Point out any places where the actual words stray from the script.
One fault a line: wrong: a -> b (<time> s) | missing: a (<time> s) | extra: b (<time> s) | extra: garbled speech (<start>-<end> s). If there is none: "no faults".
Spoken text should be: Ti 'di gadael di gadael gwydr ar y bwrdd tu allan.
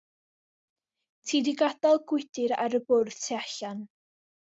missing: di gadael (2.0 s)